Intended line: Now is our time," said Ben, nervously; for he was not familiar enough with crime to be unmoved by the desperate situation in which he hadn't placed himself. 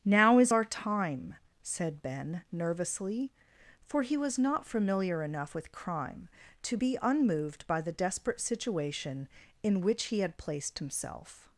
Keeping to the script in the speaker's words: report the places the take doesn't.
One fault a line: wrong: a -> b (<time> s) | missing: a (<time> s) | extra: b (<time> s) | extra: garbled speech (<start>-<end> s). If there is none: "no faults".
wrong: hadn't -> had (10.2 s)